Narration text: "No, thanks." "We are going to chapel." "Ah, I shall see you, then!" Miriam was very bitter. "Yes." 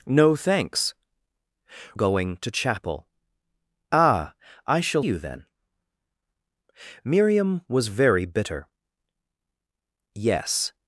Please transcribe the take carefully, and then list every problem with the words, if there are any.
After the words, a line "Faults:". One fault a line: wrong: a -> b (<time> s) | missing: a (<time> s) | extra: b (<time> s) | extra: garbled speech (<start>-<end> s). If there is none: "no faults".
"No, thanks." "Going to chapel." "Ah, I shall you, then!" Miriam was very bitter. "Yes."
Faults:
missing: We are (0.9 s)
missing: see (5.0 s)